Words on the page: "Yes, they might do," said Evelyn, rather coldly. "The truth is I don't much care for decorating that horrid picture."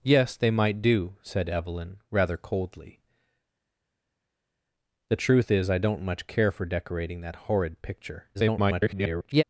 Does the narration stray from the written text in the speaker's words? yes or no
yes